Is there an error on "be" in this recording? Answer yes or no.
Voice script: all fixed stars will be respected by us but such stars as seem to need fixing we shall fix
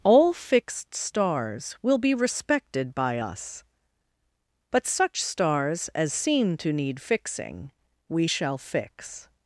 no